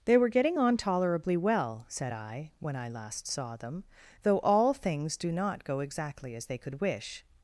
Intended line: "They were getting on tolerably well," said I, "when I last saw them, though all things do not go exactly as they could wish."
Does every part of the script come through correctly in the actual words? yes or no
yes